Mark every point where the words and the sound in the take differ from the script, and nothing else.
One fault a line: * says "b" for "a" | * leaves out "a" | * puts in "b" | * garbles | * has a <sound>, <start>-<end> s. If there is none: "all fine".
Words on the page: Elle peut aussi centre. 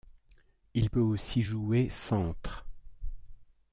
* says "Il" for "Elle"
* puts in "jouer"